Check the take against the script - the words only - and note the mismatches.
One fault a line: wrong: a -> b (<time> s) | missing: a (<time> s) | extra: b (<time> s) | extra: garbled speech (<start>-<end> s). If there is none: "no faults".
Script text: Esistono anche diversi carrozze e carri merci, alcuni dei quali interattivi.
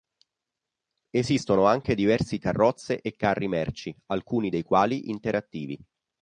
no faults